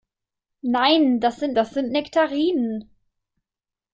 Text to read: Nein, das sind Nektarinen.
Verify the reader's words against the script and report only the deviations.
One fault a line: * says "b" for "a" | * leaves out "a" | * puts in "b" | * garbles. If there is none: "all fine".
* puts in "das sind"